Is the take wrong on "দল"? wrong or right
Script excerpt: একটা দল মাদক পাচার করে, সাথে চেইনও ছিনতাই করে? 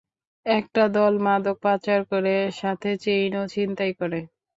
right